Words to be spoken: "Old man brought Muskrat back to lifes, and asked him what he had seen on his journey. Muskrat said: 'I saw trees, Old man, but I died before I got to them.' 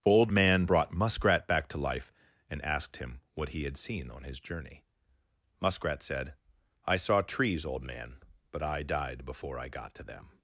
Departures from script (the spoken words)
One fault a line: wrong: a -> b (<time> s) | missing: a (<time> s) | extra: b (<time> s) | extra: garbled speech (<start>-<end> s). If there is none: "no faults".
wrong: lifes -> life (1.8 s)